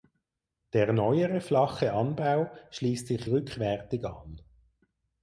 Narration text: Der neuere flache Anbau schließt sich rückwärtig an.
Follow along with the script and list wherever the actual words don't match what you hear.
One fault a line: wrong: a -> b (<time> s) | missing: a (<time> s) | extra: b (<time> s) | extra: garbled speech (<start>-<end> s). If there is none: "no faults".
no faults